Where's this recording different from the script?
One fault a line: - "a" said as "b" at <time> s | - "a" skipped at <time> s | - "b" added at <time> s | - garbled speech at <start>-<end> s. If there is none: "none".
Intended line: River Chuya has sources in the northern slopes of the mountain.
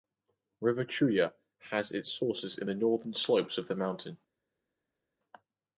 - "its" added at 1.9 s